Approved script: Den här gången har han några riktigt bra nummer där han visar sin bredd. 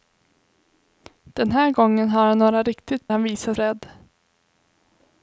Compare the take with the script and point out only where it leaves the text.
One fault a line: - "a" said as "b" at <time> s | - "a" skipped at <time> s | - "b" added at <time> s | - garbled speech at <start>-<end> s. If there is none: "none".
- "bra nummer där" skipped at 3.1 s
- "sin" skipped at 3.5 s